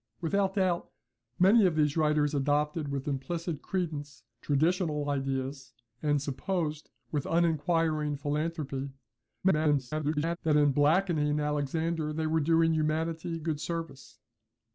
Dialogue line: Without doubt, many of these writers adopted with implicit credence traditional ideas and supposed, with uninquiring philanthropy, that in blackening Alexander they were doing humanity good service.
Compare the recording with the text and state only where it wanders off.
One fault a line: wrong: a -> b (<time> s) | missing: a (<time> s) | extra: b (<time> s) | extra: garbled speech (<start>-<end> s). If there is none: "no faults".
extra: garbled speech (9.4-10.4 s)